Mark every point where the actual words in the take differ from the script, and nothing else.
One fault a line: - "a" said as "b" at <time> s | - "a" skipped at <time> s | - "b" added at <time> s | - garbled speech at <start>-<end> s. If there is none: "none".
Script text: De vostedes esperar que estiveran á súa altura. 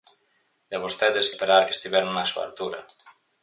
none